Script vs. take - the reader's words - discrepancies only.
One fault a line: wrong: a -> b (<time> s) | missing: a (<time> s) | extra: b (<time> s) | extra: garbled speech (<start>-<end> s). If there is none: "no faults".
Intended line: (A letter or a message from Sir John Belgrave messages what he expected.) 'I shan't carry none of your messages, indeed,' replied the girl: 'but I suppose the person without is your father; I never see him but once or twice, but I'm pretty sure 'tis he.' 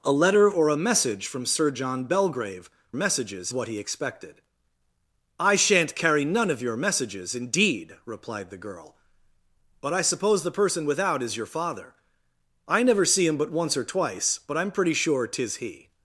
no faults